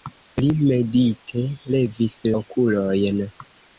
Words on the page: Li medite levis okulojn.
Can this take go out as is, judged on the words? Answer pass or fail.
pass